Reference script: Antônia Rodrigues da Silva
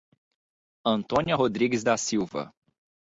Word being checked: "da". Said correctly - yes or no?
yes